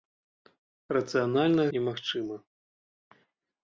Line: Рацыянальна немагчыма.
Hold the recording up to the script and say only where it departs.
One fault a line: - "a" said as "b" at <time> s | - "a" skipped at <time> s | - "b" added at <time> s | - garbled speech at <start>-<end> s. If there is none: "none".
none